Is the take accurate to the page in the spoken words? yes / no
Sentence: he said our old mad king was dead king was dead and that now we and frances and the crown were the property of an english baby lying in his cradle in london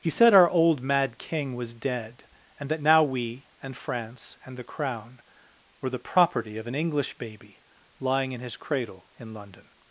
no